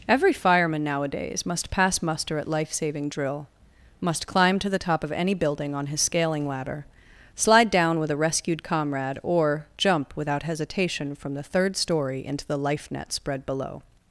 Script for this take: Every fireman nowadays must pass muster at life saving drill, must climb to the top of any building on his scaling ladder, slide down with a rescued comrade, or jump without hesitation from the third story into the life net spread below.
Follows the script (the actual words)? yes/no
yes